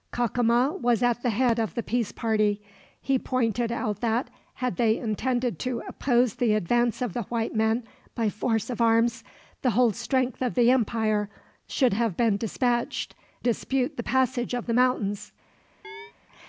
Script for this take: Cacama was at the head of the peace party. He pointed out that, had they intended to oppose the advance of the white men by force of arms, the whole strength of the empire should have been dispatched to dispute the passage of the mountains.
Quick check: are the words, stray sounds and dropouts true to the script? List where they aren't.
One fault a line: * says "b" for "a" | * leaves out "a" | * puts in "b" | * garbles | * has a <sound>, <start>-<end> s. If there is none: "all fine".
* leaves out "to"
* has a chirp, 15.8-16.1 s